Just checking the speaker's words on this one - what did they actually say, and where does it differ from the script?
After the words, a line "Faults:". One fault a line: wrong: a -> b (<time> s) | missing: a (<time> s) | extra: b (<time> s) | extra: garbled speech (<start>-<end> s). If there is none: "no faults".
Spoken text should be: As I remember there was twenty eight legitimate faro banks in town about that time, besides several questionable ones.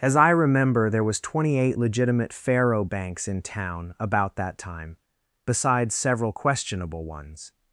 As I remember there was twenty eight legitimate faro banks in town about that time, besides several questionable ones.
Faults:
no faults